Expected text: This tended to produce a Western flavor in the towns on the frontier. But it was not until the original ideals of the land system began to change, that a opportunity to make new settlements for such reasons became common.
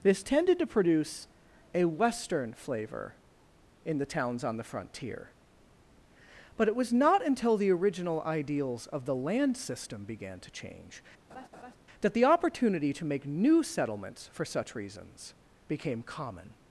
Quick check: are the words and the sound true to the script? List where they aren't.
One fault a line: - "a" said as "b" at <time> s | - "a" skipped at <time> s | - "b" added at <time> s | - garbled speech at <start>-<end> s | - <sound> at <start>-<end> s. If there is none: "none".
- laugh at 11.3-11.8 s
- "a" said as "the" at 12.1 s